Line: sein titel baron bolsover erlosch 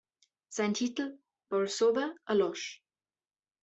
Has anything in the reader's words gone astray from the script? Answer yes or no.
yes